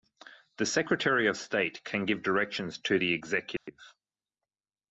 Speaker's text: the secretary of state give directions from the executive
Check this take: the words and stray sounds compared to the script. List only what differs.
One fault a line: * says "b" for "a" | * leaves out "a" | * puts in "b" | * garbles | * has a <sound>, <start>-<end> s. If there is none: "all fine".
* puts in "can"
* says "to" for "from"
* has a dropout, 3.6-3.7 s